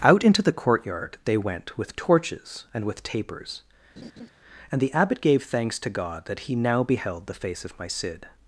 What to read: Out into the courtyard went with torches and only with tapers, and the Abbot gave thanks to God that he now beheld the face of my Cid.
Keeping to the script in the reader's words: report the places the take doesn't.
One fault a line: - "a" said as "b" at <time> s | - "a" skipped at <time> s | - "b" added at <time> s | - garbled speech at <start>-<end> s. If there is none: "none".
- "they" added at 1.3 s
- "only" skipped at 2.9 s